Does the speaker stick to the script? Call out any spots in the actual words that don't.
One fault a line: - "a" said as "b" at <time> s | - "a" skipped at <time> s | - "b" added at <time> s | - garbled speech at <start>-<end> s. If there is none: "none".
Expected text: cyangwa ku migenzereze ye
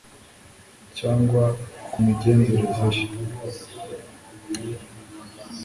none